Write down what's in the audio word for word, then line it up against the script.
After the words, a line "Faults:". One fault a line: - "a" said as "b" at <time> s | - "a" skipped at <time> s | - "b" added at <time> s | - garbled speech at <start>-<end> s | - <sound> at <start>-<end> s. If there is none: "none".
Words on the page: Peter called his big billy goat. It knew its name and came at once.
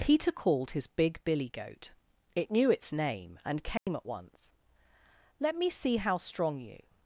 Peter called his big billy goat. It knew its name and came at once. "Let me see how strong you
Faults:
- dropout at 3.8-3.9 s
- "Let me see how strong you" added at 5.4 s